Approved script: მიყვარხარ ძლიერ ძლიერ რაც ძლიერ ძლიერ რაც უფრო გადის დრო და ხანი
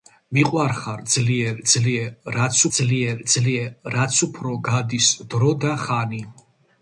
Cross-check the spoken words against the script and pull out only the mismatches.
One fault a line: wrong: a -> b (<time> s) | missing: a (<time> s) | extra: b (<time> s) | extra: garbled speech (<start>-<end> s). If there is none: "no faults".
no faults